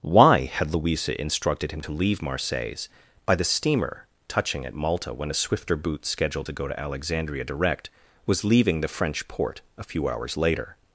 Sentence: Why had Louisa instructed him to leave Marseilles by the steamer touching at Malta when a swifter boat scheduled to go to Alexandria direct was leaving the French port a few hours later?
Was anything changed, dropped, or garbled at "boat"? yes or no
yes